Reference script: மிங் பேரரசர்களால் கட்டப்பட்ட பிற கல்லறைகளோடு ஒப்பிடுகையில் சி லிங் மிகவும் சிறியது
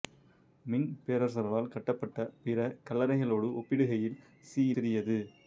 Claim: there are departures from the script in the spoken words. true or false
true